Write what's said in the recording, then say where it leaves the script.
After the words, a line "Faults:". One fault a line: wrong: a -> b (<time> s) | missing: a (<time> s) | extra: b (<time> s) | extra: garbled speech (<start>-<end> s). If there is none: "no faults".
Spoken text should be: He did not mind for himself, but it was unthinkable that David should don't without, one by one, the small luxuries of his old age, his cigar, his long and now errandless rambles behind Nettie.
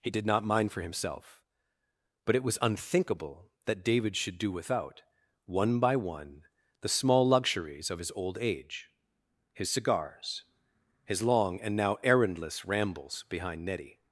He did not mind for himself, but it was unthinkable that David should do without, one by one, the small luxuries of his old age, his cigars, his long and now errandless rambles behind Nettie.
Faults:
wrong: don't -> do (4.4 s)
wrong: cigar -> cigars (9.7 s)